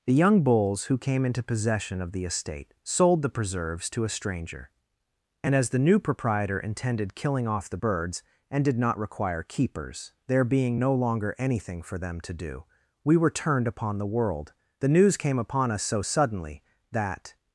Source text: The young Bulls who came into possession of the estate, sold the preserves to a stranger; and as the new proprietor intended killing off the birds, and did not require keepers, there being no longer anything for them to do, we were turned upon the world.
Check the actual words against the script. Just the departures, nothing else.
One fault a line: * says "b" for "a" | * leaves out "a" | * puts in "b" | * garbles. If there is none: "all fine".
* puts in "The news came upon us so suddenly that"